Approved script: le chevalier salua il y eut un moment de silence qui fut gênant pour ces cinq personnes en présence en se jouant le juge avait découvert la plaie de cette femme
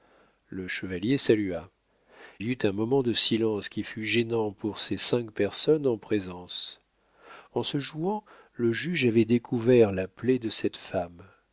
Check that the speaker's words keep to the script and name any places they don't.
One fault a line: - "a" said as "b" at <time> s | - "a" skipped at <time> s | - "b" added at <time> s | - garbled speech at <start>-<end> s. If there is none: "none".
- "il" skipped at 1.7 s